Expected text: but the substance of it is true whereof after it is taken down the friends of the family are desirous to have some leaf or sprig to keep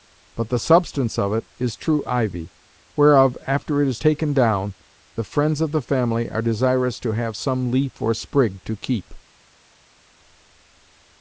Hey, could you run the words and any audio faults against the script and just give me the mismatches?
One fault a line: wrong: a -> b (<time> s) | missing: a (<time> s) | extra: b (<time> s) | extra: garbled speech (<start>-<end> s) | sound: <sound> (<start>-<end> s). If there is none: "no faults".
extra: ivy (2.1 s)